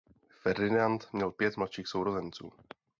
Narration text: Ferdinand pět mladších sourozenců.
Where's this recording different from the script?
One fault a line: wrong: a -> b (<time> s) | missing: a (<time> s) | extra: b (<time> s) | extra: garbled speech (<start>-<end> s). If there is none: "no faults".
extra: měl (1.1 s)